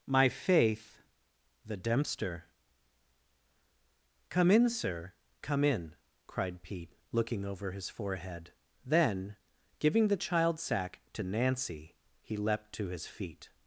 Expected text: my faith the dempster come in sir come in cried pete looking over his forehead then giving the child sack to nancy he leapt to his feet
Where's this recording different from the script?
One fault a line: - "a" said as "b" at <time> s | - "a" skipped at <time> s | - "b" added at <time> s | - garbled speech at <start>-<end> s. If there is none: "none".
none